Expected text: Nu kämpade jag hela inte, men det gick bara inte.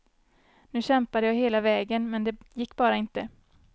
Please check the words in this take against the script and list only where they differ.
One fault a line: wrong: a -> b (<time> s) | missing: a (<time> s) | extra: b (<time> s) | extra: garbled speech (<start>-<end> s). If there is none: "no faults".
wrong: inte -> vägen (1.6 s)